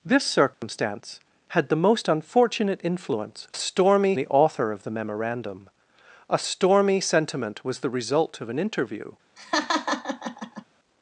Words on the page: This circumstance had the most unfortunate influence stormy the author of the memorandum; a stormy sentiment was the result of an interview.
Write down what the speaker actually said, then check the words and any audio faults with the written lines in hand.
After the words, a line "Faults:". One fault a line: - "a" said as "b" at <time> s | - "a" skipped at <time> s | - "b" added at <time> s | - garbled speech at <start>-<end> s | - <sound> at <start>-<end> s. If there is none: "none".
This circumstance had the most unfortunate influence stormy the author of the memorandum; a stormy sentiment was the result of an interview.
Faults:
- dropout at 0.5-0.6 s
- laugh at 9.4-10.6 s